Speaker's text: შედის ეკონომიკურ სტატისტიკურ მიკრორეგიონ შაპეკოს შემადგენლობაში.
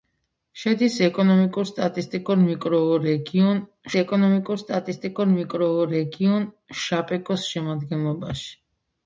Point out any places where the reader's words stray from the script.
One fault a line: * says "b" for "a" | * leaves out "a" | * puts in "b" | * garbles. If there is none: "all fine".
* puts in "ეკონომიკურ სტატისტიკურ მიკრორეგიონ"